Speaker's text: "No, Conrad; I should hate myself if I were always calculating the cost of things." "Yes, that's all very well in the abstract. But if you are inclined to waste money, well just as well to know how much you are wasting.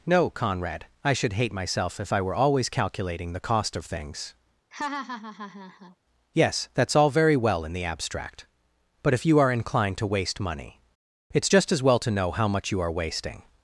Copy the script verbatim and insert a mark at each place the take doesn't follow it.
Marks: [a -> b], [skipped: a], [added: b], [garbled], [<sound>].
"No, Conrad; I should hate myself if I were always calculating the cost of things." [laugh] "Yes, that's all very well in the abstract. But if you are inclined to waste money, [well -> it's] just as well to know how much you are wasting.